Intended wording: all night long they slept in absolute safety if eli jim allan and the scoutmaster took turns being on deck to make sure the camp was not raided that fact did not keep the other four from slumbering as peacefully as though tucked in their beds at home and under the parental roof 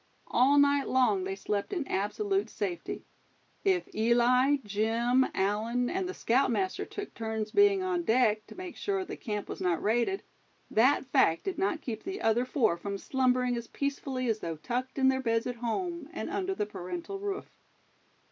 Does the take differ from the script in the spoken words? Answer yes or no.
no